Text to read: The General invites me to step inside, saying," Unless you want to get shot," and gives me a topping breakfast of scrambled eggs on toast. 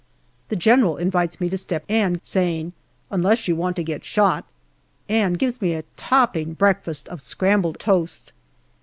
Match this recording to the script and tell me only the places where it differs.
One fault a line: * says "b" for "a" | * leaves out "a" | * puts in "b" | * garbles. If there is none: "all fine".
* says "and" for "inside"
* leaves out "eggs on"